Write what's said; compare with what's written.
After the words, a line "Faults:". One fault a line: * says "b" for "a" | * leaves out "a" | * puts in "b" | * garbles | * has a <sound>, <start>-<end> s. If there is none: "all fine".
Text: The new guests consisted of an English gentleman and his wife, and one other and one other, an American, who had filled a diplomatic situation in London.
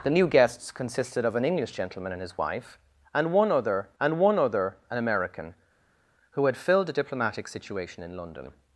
The new guests consisted of an English gentleman and his wife, and one other and one other, an American, who had filled a diplomatic situation in London.
Faults:
all fine